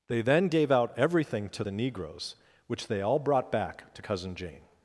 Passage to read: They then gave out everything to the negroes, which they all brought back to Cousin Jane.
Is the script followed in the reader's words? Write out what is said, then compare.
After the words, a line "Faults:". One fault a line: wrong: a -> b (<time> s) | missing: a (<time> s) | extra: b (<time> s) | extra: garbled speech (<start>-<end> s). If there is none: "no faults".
They then gave out everything to the negroes, which they all brought back to Cousin Jane.
Faults:
no faults